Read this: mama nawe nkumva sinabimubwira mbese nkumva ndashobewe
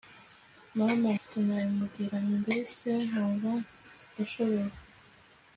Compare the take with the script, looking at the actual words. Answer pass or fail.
fail